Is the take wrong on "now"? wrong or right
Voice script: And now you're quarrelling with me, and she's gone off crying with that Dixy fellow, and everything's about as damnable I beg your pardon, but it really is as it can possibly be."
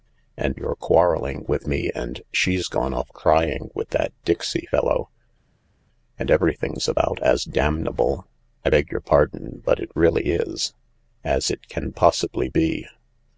wrong